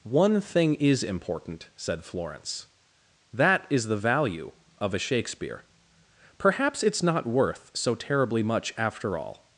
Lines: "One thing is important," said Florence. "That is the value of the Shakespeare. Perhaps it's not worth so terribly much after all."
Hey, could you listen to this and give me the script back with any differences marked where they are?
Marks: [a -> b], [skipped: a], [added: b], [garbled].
"One thing is important," said Florence. "That is the value of [the -> a] Shakespeare. Perhaps it's not worth so terribly much after all."